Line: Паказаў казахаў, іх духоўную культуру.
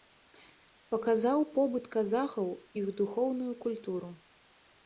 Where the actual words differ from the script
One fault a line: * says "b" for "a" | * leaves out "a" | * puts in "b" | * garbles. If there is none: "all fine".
* puts in "побыт"